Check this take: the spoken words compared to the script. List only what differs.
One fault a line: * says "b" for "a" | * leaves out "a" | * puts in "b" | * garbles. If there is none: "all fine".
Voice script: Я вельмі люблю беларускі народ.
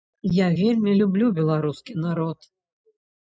all fine